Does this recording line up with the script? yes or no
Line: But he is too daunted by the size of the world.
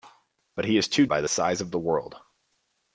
no